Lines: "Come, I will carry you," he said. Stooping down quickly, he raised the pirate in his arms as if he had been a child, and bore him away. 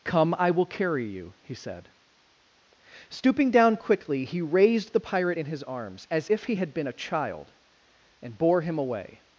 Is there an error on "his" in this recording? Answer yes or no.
no